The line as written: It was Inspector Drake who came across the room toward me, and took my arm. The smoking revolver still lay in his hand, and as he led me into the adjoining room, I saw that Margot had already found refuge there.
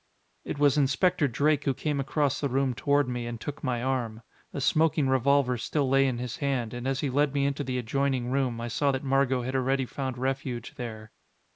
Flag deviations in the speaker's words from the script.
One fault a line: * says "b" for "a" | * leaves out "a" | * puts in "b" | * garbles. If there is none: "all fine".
all fine